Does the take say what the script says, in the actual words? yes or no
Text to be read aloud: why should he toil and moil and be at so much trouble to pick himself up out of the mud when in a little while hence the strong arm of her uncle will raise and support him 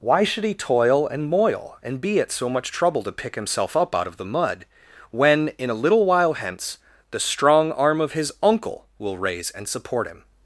no